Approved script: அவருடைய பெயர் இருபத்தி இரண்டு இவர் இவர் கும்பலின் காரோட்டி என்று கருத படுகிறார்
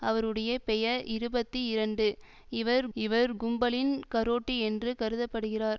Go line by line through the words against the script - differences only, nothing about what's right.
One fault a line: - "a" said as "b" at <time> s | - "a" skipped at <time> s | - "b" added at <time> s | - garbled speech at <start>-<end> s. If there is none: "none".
none